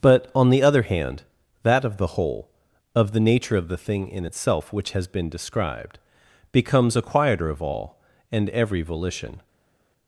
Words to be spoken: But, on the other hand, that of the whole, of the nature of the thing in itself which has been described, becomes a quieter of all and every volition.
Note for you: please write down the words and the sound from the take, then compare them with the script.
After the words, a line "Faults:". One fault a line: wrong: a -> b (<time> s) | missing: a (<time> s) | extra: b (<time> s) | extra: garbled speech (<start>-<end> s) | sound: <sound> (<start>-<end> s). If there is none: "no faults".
But, on the other hand, that of the whole, of the nature of the thing in itself which has been described, becomes a quieter of all and every volition.
Faults:
no faults